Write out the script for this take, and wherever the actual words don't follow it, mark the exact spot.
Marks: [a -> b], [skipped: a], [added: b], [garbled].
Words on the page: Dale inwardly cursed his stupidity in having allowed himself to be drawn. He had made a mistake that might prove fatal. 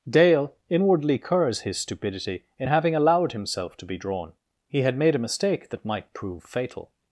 Dale inwardly [cursed -> curs] his stupidity in having allowed himself to be drawn. He had made a mistake that might prove fatal.